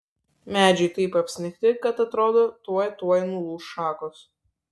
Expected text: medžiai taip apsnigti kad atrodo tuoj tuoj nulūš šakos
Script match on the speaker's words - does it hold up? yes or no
yes